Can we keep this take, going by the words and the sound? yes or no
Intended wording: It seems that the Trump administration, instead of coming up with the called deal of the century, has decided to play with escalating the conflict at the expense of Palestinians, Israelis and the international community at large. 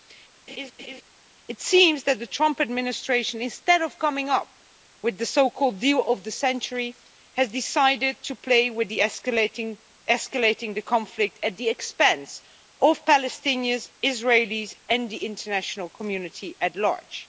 no